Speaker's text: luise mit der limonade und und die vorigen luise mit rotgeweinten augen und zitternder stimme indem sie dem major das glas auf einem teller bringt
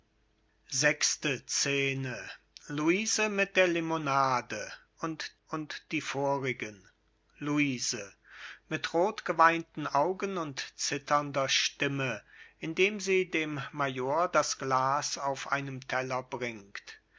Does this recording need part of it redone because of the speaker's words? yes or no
no